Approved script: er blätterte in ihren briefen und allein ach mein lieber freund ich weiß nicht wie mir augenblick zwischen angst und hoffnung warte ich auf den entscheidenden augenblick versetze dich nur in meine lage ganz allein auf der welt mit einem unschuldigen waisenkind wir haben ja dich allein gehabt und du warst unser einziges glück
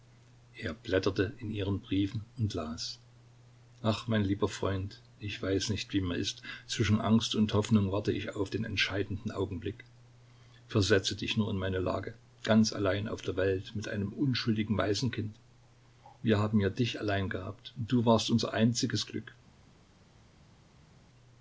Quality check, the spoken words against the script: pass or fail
fail